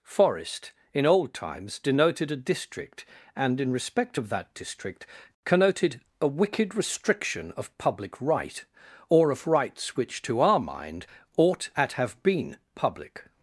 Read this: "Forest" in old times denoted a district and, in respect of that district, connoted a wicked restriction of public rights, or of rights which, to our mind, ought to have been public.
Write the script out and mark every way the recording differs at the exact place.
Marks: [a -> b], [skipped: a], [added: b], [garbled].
"Forest" in old times denoted a district and, in respect of that district, connoted a wicked restriction of public [rights, -> right] or of rights which, to our mind, ought [to -> at] have been public.